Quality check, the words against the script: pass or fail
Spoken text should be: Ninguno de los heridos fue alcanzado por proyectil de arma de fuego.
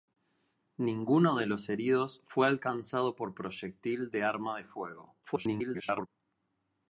fail